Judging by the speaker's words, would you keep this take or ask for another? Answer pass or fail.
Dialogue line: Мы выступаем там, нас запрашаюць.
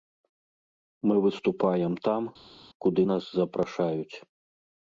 fail